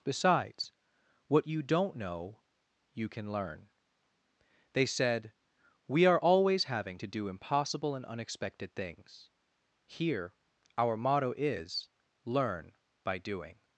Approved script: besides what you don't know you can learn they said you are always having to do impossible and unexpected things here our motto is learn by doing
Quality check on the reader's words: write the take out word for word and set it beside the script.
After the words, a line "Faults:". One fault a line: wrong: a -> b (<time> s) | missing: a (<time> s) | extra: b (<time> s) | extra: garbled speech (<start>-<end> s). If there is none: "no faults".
besides what you don't know you can learn they said we are always having to do impossible and unexpected things here our motto is learn by doing
Faults:
wrong: you -> we (5.9 s)